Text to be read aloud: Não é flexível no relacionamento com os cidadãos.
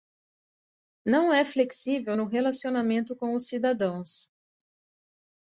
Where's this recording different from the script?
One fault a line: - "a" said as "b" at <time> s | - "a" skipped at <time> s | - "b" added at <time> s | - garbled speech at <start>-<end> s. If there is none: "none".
none